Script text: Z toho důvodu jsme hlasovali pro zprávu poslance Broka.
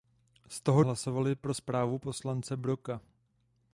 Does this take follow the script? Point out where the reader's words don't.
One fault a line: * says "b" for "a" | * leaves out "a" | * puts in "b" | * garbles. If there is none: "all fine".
* leaves out "důvodu jsme"